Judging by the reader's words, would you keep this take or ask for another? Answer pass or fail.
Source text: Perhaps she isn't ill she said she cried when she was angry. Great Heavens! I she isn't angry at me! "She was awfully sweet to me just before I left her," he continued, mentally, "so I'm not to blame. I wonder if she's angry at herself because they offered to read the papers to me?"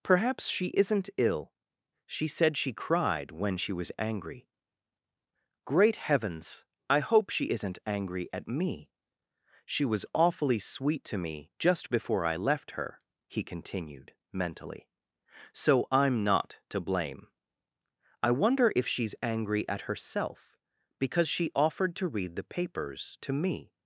fail